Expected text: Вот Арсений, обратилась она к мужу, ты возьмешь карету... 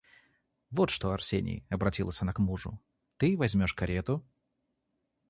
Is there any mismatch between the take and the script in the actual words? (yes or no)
yes